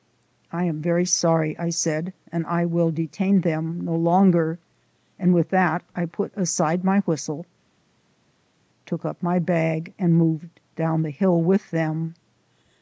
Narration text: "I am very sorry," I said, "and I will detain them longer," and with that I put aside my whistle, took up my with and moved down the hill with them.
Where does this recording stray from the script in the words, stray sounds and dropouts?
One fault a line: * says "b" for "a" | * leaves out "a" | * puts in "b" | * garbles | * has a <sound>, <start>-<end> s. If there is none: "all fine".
* puts in "no"
* says "bag" for "with"